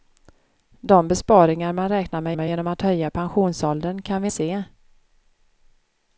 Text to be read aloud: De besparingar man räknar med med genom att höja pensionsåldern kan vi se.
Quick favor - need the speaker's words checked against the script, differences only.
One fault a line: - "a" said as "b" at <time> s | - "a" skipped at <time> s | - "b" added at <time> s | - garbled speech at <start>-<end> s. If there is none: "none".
none